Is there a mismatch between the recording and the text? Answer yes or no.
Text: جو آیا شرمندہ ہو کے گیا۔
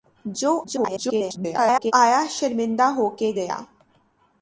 yes